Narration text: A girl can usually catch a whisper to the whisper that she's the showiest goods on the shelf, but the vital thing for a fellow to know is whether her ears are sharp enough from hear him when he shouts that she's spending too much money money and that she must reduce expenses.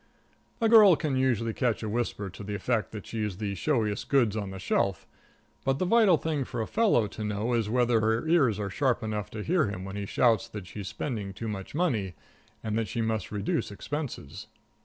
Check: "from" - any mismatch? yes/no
yes